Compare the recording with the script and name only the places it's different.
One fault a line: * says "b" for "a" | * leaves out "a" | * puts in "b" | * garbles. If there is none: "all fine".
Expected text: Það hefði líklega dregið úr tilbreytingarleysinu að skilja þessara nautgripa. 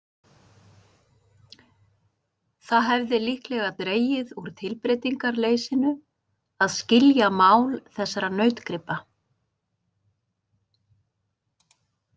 * puts in "mál"